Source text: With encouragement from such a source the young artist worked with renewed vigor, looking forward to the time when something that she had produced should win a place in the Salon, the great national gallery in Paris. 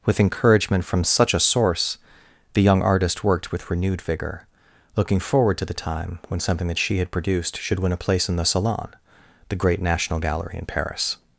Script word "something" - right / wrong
right